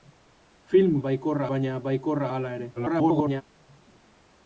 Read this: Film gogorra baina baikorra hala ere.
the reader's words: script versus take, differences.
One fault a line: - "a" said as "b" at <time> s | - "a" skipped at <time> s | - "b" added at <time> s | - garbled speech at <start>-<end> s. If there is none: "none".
- "gogorra" said as "baikorra" at 1.1 s
- garbled speech at 2.8-3.4 s